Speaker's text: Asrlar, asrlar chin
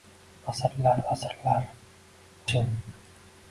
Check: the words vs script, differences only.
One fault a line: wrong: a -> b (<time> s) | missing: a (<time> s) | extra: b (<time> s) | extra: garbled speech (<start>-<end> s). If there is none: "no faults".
no faults